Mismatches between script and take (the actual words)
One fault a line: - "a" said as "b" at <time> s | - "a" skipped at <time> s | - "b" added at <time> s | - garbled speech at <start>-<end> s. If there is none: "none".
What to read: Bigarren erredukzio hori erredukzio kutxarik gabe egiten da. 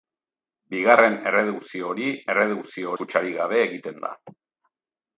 none